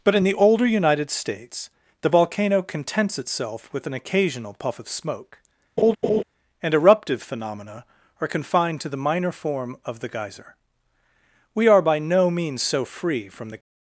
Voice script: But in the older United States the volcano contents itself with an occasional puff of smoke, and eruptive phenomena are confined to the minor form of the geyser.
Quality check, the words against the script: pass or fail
fail